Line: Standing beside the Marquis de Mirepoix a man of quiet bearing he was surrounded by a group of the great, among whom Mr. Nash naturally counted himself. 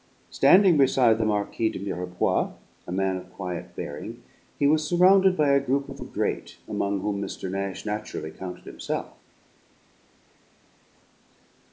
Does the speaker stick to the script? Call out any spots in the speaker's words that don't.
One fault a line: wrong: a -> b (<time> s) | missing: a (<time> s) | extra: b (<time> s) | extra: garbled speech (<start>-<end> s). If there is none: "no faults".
no faults